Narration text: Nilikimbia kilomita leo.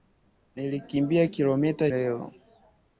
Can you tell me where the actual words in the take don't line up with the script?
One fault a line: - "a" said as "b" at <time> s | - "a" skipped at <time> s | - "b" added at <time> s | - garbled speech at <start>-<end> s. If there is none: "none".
none